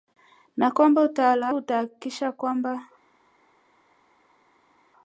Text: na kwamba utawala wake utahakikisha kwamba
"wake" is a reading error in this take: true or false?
true